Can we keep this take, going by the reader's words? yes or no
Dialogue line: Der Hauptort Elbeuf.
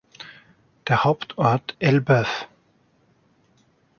yes